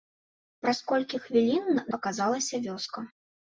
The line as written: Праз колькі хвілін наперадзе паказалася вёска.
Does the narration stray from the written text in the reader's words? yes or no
yes